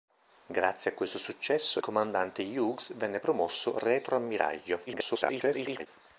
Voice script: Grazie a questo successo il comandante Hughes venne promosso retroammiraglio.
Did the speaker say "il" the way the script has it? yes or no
no